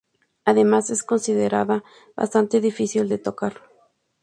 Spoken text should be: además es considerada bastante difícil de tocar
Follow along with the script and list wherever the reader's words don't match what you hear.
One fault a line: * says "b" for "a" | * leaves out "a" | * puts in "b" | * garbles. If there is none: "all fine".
all fine